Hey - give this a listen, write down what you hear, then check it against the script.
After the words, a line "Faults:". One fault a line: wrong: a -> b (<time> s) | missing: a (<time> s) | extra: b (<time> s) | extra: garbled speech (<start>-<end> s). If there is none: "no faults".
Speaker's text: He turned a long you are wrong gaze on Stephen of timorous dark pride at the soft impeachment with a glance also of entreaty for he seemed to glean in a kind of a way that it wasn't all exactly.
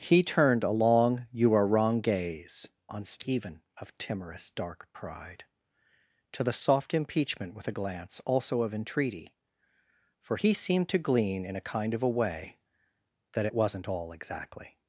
He turned a long you are wrong gaze on Stephen of timorous dark pride to the soft impeachment with a glance also of entreaty for he seemed to glean in a kind of a way that it wasn't all exactly.
Faults:
wrong: at -> to (6.3 s)